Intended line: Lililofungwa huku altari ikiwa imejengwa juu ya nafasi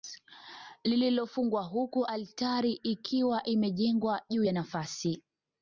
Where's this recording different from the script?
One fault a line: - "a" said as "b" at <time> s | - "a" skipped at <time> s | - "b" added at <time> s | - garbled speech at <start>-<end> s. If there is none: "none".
none